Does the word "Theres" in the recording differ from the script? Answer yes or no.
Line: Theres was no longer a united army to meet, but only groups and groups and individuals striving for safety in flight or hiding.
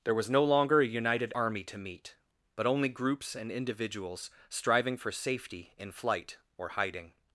yes